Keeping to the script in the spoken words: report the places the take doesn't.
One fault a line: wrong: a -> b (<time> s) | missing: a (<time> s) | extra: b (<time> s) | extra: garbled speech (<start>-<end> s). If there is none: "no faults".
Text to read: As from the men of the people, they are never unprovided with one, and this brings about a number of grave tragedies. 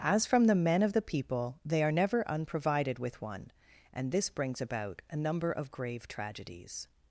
no faults